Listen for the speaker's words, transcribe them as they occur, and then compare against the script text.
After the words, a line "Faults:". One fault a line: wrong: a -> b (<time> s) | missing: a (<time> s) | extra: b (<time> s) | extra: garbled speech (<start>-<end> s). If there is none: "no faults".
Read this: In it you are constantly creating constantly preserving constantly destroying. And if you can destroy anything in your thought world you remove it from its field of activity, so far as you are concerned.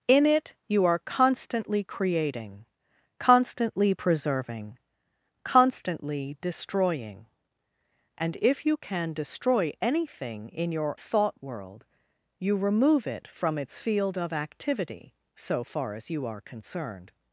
In it you are constantly creating constantly preserving constantly destroying. And if you can destroy anything in your thought world you remove it from its field of activity, so far as you are concerned.
Faults:
no faults